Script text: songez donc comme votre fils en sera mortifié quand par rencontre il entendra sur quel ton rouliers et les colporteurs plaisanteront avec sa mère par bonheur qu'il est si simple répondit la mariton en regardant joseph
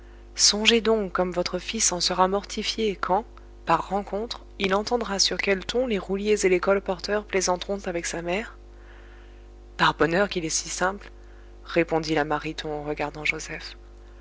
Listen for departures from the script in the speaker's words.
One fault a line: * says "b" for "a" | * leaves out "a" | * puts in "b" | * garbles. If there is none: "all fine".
* puts in "les"